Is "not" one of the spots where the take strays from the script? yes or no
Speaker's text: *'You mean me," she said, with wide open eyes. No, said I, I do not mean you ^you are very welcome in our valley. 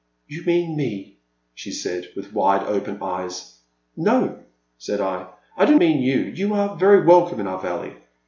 yes